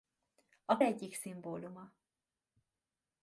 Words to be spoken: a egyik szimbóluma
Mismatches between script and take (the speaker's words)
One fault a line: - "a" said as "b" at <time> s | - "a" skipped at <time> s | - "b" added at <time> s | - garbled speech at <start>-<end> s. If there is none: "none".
none